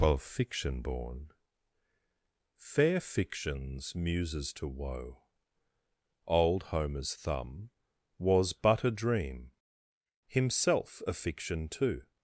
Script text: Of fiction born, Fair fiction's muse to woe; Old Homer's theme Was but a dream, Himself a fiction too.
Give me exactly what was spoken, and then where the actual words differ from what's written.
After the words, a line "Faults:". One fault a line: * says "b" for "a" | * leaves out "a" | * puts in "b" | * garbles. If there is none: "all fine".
Of fiction born, Fair fiction's muses to woe; Old Homer's thumb Was but a dream, Himself a fiction too.
Faults:
* says "muses" for "muse"
* says "thumb" for "theme"